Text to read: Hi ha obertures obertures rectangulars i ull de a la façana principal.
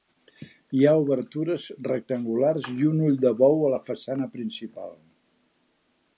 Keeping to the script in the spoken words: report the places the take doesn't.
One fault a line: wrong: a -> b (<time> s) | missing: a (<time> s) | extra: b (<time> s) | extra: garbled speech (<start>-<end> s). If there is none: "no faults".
missing: obertures (1.7 s)
extra: un (2.9 s)
extra: bou (3.4 s)